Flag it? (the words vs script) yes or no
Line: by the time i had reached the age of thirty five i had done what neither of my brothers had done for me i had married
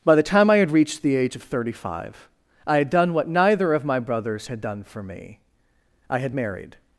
no